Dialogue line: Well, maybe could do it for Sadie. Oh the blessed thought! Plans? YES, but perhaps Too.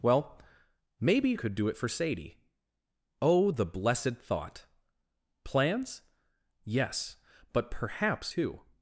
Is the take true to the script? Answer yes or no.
yes